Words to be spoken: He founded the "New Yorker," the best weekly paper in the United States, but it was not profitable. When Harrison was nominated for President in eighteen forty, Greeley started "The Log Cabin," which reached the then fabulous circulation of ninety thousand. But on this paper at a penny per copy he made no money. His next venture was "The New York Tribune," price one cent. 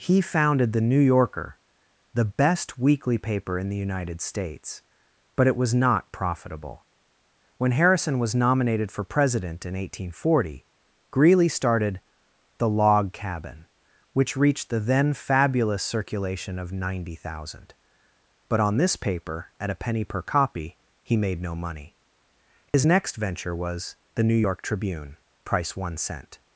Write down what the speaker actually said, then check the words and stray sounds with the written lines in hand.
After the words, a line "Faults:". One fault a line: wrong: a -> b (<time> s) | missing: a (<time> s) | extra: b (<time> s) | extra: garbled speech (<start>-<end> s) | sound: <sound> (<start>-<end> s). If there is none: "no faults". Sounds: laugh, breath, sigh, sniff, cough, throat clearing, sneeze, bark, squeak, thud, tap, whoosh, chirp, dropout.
He founded the "New Yorker," the best weekly paper in the United States, but it was not profitable. When Harrison was nominated for President in eighteen forty, Greeley started "The Log Cabin," which reached the then fabulous circulation of ninety thousand. But on this paper at a penny per copy he made no money. His next venture was "The New York Tribune," price one cent.
Faults:
sound: dropout (22.7-22.7 s)